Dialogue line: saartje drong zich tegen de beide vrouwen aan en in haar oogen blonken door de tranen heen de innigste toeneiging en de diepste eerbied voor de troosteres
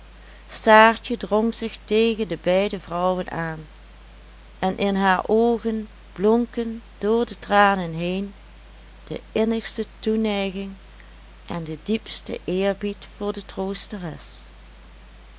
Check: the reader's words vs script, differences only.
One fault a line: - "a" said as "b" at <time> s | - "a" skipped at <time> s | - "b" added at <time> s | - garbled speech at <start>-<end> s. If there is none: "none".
none